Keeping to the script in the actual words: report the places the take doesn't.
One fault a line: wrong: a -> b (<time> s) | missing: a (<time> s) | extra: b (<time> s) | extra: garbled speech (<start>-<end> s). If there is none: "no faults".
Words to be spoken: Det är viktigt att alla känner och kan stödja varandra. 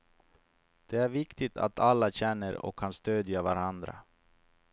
no faults